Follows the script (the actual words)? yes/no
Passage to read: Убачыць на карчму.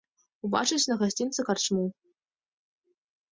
no